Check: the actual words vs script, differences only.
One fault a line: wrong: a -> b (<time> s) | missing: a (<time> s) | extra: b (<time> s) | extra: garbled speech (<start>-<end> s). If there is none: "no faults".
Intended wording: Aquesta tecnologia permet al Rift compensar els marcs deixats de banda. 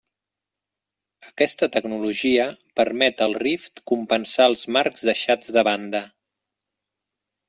no faults